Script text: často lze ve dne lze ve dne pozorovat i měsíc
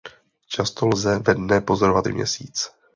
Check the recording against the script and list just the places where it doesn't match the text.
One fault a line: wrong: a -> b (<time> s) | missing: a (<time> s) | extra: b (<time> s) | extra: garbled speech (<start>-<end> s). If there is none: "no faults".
missing: lze ve dne (1.6 s)